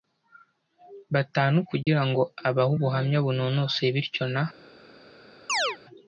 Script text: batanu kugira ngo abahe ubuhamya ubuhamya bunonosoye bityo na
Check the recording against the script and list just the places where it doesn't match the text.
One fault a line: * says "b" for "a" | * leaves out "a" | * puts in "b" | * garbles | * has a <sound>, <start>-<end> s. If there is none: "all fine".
* has a dropout, 1.8-1.9 s
* leaves out "ubuhamya"
* has a chirp, 5.5-5.8 s